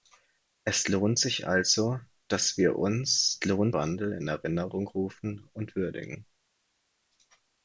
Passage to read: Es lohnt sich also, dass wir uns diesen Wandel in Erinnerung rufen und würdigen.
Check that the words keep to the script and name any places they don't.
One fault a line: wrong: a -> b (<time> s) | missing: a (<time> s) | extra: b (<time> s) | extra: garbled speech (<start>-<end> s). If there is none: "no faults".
wrong: diesen -> lohnt (3.4 s)